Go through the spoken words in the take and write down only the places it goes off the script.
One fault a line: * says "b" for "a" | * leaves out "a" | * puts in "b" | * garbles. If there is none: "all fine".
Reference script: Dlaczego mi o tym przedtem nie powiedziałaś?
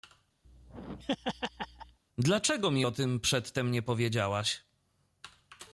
all fine